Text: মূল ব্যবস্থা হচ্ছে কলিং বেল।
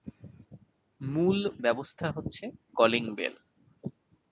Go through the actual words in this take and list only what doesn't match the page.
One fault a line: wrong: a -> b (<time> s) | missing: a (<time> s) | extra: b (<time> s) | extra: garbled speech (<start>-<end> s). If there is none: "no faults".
no faults